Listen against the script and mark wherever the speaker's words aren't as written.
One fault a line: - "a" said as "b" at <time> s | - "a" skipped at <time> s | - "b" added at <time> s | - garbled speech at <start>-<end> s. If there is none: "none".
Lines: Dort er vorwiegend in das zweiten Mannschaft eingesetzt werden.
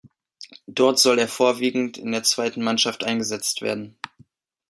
- "soll" added at 1.0 s
- "das" said as "der" at 2.1 s